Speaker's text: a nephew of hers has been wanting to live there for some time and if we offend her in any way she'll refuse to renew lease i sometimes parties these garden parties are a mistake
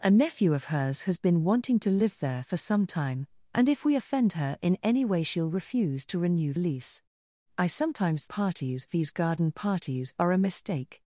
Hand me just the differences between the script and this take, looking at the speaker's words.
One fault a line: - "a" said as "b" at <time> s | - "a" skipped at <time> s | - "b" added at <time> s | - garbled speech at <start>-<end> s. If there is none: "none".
none